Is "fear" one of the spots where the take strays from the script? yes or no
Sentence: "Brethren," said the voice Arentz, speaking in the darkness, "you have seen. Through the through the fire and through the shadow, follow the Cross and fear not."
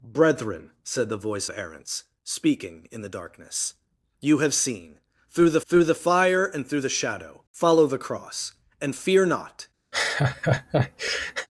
no